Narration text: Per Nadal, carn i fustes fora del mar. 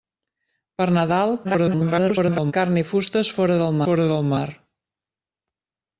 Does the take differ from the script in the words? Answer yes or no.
yes